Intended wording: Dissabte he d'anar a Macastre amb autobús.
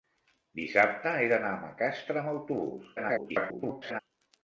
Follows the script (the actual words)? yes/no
no